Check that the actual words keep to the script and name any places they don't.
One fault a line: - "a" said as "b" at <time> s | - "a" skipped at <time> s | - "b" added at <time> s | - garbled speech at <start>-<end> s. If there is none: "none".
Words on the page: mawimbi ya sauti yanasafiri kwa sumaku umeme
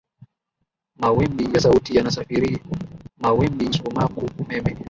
- "kwa" said as "mawimbi" at 3.2 s